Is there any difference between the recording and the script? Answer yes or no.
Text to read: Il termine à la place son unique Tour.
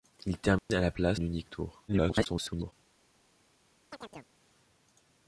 yes